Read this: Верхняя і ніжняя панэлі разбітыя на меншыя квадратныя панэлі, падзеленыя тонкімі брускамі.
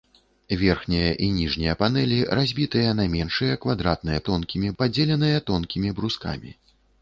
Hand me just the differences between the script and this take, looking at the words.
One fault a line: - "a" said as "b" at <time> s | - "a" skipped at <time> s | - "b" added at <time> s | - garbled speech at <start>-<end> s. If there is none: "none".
- "панэлі" said as "тонкімі" at 4.3 s